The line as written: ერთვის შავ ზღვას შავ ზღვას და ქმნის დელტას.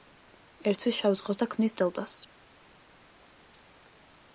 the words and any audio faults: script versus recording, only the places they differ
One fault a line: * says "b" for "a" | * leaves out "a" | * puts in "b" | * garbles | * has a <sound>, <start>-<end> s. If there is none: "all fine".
* leaves out "შავ ზღვას"